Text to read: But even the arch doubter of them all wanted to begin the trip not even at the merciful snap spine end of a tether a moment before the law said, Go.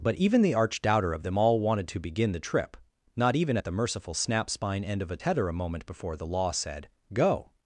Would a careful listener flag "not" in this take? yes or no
no